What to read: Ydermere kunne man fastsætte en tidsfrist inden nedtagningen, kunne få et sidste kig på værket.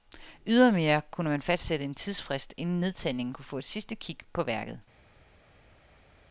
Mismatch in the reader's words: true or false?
false